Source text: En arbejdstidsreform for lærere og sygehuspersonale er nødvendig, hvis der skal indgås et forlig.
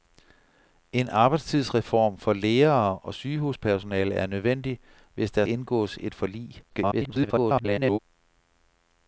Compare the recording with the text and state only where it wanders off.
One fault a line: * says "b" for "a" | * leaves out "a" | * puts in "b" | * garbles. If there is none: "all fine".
* leaves out "skal"
* garbles